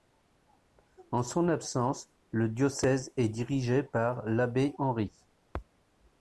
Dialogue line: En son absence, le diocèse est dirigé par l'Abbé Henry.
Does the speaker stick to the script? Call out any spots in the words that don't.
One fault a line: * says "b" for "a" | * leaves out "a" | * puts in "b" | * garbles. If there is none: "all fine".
all fine